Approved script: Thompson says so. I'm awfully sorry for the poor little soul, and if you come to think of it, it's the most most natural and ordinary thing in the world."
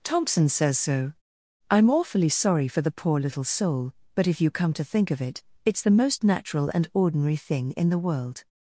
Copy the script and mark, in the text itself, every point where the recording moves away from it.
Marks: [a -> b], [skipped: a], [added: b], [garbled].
Thompson says so. I'm awfully sorry for the poor little soul, [and -> but] if you come to think of it, it's the most [skipped: most] natural and ordinary thing in the world."